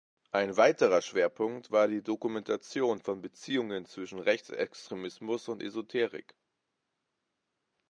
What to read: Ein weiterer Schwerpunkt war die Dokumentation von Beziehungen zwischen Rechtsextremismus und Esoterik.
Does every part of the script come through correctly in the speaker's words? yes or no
yes